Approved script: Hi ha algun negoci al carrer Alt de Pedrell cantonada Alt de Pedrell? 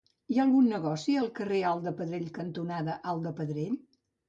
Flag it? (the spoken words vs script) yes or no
no